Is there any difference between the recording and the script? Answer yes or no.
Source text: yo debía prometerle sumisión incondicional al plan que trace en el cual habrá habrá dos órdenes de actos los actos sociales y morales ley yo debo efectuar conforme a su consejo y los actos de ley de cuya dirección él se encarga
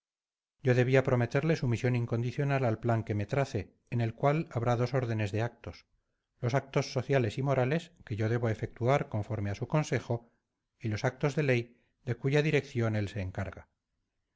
yes